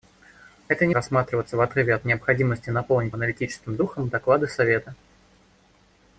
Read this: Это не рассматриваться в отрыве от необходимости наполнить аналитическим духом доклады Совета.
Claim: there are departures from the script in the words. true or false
false